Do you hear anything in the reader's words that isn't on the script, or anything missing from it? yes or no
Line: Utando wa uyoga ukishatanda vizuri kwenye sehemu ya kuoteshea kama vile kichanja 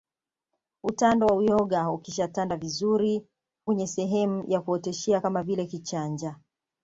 no